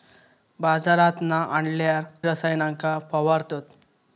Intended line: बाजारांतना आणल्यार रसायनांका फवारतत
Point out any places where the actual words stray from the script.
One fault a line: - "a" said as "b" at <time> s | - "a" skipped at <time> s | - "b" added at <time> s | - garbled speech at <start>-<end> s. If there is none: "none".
none